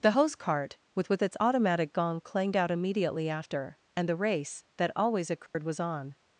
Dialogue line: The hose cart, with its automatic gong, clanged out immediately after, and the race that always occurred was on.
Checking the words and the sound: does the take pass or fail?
fail